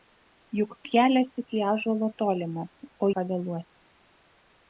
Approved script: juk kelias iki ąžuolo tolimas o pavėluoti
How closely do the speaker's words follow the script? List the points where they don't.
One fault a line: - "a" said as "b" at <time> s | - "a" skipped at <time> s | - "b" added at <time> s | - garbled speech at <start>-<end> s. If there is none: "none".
none